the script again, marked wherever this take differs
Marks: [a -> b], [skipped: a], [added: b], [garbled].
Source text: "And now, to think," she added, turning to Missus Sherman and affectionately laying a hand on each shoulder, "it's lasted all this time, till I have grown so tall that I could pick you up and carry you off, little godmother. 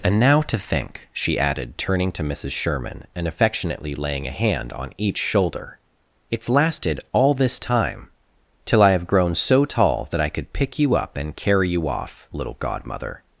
"And now, to think," she added, turning to Missus Sherman and affectionately laying a hand on each shoulder, "it's lasted all this time, till I have grown so tall that I could pick you up and carry you off, little godmother.